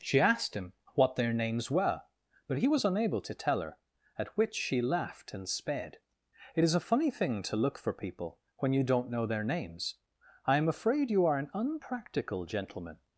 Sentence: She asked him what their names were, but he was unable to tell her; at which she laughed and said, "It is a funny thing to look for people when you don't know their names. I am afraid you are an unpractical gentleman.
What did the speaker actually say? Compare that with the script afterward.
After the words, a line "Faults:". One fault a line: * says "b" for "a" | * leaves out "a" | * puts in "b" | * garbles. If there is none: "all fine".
She asked him what their names were, but he was unable to tell her; at which she laughed and sped, "It is a funny thing to look for people when you don't know their names. I am afraid you are an unpractical gentleman.
Faults:
* says "sped" for "said"